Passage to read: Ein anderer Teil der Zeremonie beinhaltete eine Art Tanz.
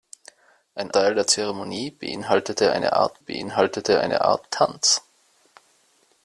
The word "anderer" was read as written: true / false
false